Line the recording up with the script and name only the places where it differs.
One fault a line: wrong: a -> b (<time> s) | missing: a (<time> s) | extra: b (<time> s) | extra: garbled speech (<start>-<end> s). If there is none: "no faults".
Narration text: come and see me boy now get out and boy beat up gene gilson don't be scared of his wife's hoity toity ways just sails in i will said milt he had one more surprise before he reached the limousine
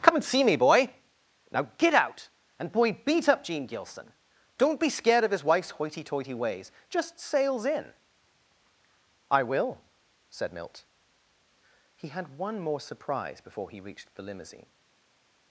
no faults